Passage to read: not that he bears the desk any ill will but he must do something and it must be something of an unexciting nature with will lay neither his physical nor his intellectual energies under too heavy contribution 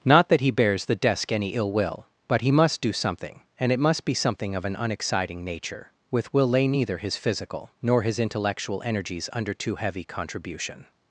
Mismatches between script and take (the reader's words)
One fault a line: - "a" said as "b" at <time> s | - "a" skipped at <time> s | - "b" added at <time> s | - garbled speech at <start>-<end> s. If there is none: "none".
none